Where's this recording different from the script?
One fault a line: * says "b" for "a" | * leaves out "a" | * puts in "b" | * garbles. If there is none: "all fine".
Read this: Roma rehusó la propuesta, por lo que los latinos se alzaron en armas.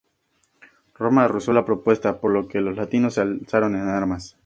all fine